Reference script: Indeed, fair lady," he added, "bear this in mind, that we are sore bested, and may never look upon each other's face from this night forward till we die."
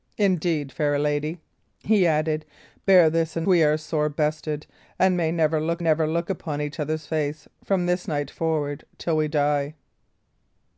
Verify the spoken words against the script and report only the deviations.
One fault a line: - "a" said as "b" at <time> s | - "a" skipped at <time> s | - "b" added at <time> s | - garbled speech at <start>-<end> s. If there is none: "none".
- "mind that" skipped at 3.5 s
- "never look" added at 5.8 s